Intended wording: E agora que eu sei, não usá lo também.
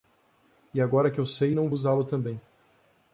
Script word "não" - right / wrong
right